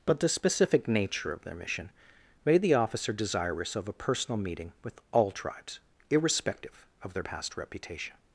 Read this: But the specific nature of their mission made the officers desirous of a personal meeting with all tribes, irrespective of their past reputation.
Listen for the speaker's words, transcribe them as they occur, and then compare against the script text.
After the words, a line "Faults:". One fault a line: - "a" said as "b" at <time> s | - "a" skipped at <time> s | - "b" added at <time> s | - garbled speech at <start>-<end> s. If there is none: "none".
But the specific nature of their mission made the officer desirous of a personal meeting with all tribes, irrespective of their past reputation.
Faults:
- "officers" said as "officer" at 2.7 s